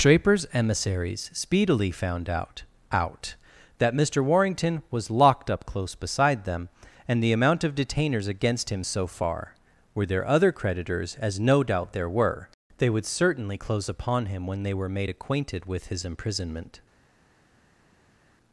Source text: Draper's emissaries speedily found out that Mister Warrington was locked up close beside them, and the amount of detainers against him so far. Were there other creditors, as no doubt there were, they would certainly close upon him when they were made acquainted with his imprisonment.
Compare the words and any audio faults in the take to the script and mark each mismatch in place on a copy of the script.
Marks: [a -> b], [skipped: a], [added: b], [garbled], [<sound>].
Draper's emissaries speedily found out [added: out] that Mister Warrington was locked up close beside them, and the amount of detainers against him so far. Were there other creditors, as no doubt there were, they would certainly close upon him when they were made acquainted with his imprisonment.